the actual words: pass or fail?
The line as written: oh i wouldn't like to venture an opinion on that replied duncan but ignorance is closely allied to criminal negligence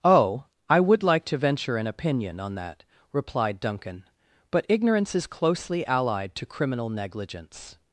fail